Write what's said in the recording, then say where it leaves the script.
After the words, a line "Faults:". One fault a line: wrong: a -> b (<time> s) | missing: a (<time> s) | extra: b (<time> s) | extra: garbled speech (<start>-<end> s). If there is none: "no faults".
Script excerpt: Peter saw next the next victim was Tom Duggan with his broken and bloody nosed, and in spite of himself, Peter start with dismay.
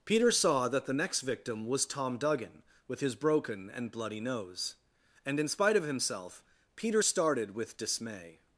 Peter saw that the next victim was Tom Duggan with his broken and bloody nose, and in spite of himself, Peter started with dismay.
Faults:
wrong: next -> that (0.7 s)
wrong: nosed -> nose (4.2 s)
wrong: start -> started (7.0 s)